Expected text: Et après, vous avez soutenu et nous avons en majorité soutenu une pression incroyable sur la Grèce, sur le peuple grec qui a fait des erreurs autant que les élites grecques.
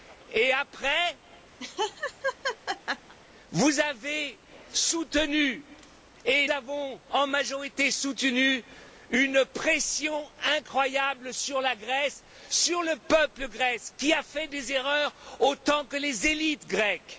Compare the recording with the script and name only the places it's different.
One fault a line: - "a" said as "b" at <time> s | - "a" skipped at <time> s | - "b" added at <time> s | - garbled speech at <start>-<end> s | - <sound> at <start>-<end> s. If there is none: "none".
- laugh at 1.6-3.1 s
- "nous" skipped at 6.5 s